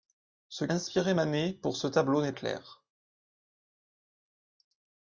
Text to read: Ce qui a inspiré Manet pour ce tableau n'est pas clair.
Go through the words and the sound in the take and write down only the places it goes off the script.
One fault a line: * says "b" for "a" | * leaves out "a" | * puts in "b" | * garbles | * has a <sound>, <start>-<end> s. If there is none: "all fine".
* leaves out "qui a"
* leaves out "pas"